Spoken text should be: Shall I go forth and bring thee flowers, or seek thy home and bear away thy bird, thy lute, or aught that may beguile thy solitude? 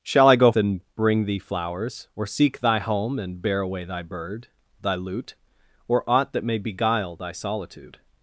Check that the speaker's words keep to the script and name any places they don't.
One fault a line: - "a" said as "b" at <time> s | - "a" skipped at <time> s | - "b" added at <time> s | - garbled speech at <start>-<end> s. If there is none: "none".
- "forth" skipped at 0.5 s